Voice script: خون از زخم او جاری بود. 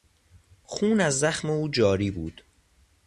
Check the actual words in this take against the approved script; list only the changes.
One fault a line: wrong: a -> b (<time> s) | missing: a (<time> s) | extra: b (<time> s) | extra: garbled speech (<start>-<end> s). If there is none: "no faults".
no faults